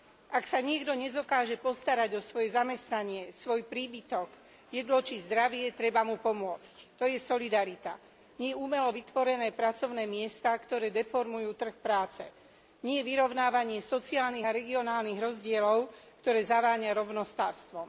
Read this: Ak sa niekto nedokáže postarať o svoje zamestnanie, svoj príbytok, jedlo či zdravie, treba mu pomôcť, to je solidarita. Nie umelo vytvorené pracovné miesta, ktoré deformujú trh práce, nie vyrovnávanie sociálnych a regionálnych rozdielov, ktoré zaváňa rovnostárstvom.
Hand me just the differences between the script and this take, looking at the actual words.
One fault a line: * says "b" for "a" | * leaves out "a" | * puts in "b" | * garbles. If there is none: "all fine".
all fine